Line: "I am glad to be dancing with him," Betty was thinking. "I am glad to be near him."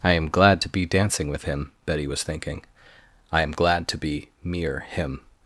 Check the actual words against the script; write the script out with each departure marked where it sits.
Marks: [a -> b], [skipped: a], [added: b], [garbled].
"I am glad to be dancing with him," Betty was thinking. "I am glad to be [near -> mere] him."